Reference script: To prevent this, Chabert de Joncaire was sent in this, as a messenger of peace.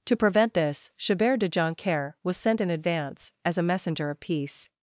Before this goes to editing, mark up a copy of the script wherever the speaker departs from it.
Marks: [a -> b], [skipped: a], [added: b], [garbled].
To prevent this, Chabert de Joncaire was sent in [this, -> advance] as a messenger of peace.